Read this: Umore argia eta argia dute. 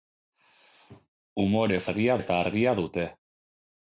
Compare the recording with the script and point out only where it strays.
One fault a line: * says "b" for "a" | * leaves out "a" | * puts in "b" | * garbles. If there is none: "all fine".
all fine